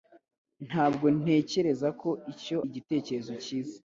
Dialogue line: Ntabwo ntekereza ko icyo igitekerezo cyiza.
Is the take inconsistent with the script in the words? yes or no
no